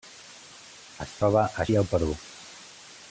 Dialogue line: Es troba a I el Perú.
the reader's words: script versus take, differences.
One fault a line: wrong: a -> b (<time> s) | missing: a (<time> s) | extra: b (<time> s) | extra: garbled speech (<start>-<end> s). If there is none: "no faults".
no faults